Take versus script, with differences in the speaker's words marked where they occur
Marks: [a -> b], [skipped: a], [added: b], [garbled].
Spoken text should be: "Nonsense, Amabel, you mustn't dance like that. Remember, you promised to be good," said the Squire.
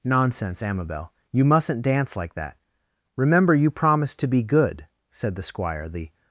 "Nonsense, Amabel, you mustn't dance like that. Remember, you promised to be good," said the Squire. [added: The]